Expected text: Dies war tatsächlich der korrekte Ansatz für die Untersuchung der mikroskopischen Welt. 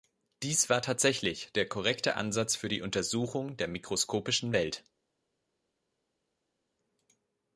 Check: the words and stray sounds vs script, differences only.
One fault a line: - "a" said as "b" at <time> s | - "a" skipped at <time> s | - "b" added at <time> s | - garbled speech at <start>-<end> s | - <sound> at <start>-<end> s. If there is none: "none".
none